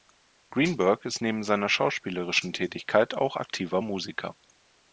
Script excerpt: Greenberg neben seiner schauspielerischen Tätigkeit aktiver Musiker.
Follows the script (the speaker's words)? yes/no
no